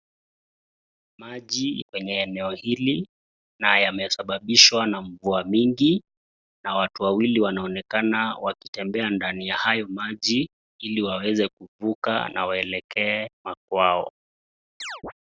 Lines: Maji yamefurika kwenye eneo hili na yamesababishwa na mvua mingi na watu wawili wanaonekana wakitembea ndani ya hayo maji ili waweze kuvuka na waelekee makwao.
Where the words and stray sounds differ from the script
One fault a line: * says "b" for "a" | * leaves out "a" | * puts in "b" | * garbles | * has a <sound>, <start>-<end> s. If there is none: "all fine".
* leaves out "yamefurika"
* has a chirp, 14.8-15.1 s